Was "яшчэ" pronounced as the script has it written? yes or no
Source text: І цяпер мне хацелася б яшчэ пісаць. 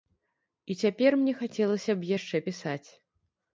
yes